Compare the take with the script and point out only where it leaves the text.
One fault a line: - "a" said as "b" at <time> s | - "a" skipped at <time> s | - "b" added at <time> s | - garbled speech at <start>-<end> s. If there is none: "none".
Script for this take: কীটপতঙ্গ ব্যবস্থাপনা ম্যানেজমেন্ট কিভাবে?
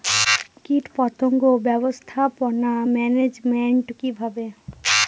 none